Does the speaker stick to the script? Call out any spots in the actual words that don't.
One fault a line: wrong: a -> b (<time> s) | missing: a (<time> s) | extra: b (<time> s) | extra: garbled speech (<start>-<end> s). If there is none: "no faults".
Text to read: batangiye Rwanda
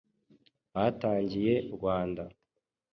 no faults